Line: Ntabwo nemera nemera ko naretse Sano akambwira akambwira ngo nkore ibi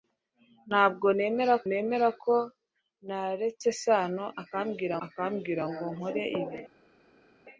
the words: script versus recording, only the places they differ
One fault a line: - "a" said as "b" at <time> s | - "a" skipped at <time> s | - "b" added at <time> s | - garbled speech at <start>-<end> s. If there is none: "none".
none